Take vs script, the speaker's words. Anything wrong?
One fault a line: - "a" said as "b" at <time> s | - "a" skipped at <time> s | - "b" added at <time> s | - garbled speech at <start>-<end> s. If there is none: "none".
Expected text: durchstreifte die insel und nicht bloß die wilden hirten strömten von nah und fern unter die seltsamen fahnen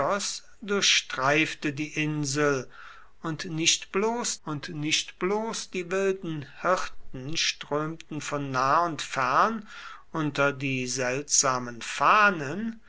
- "und nicht bloß" added at 4.4 s